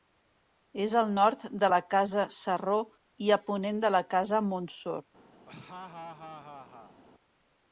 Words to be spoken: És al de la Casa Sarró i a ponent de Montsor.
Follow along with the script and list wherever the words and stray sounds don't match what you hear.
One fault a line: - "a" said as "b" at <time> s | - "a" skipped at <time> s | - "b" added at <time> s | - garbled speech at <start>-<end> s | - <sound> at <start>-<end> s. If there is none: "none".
- "nord" added at 1.2 s
- "la Casa" added at 4.0 s
- laugh at 5.5-7.0 s